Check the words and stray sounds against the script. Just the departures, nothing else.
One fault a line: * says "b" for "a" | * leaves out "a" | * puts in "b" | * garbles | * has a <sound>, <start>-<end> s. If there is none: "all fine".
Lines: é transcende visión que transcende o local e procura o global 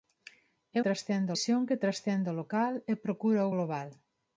all fine